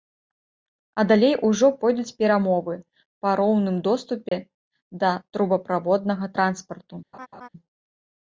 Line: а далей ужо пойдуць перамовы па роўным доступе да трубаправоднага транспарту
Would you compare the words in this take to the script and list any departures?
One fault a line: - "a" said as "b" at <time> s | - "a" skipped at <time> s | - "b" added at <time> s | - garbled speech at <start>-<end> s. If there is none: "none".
none